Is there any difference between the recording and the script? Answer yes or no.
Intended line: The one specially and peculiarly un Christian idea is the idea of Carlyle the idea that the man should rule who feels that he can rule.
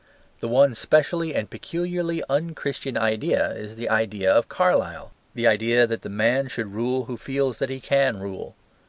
no